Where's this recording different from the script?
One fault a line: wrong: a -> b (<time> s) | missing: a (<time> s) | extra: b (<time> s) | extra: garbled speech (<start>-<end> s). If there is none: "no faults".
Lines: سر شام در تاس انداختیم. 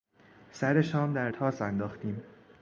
no faults